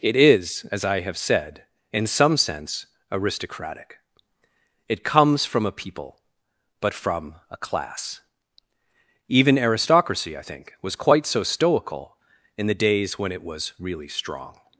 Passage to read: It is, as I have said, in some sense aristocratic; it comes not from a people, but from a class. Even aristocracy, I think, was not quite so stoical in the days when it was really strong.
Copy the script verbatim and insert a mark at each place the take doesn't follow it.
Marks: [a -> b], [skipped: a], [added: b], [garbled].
It is, as I have said, in some sense aristocratic; it comes [skipped: not] from a people, but from a class. Even aristocracy, I think, was [skipped: not] quite so stoical in the days when it was really strong.